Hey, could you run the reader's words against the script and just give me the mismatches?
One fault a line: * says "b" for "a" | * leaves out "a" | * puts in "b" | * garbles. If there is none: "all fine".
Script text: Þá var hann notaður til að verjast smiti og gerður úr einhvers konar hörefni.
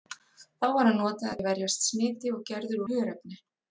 * leaves out "til"
* leaves out "úr einhvers konar"